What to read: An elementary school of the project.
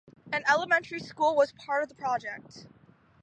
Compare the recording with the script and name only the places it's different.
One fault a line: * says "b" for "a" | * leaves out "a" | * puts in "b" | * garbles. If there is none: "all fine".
* puts in "was part"